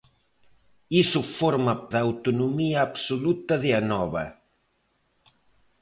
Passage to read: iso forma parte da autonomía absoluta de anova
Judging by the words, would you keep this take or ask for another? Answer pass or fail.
fail